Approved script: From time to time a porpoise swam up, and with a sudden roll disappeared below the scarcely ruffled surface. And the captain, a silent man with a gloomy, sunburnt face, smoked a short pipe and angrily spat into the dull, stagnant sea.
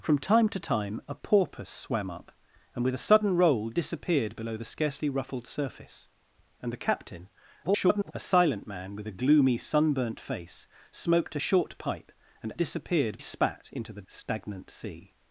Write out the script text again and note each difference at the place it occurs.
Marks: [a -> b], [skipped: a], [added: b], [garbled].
From time to time a porpoise swam up, and with a sudden roll disappeared below the scarcely ruffled surface. And the captain, [garbled] a silent man with a gloomy, sunburnt face, smoked a short pipe and [angrily -> disappeared] spat into the [skipped: dull,] stagnant sea.